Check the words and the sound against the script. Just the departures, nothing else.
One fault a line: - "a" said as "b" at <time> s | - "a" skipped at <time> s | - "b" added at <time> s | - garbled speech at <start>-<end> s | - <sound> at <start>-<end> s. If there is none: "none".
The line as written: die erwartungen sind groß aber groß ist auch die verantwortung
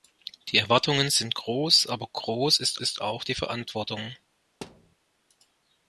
- "ist" added at 2.8 s
- thud at 4.6-5.0 s